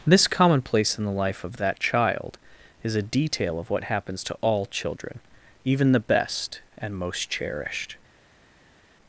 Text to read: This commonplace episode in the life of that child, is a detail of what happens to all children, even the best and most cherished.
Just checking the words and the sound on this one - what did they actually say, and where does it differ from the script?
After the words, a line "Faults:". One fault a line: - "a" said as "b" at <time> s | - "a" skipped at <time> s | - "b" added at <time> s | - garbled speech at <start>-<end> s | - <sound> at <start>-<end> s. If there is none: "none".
This commonplace in the life of that child, is a detail of what happens to all children, even the best and most cherished.
Faults:
- "episode" skipped at 0.9 s